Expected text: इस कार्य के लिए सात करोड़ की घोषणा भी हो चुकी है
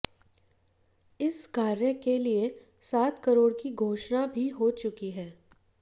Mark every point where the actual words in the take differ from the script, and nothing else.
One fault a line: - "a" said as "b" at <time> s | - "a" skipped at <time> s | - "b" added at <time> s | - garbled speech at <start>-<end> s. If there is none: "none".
none